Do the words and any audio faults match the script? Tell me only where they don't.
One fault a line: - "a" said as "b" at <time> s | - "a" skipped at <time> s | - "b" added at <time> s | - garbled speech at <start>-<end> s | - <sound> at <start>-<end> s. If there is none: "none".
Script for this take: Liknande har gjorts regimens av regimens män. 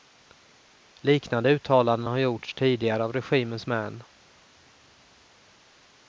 - "uttalanden" added at 1.5 s
- "regimens" said as "tidigare" at 2.5 s